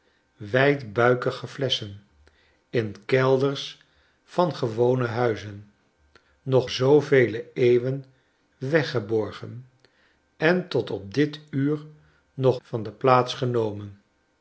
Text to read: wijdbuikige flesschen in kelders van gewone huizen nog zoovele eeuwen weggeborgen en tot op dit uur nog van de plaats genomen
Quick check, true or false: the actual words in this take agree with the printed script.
true